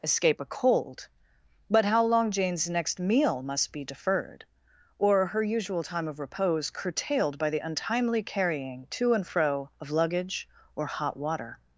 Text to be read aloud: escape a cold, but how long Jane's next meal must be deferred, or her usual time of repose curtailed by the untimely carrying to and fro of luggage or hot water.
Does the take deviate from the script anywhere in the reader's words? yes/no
no